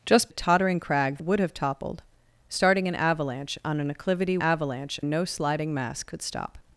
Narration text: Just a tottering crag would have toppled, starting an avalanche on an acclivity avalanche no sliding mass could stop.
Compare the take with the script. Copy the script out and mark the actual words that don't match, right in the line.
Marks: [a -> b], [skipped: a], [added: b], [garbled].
Just a tottering crag would have toppled, starting an avalanche on an acclivity avalanche no sliding mass could stop.